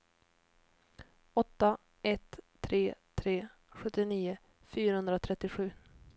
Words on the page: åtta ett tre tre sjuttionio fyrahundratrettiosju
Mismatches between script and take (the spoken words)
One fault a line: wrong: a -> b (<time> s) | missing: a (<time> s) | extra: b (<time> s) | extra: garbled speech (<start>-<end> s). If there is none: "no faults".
no faults